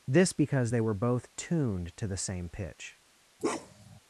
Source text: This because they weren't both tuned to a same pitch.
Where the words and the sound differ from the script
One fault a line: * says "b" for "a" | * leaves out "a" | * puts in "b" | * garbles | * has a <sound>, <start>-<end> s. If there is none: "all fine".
* says "were" for "weren't"
* says "the" for "a"
* has a bark, 3.4-4.0 s